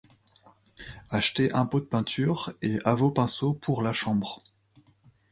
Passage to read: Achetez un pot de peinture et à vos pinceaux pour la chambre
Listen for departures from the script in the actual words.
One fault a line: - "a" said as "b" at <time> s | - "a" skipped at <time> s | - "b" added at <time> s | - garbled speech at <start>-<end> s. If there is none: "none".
none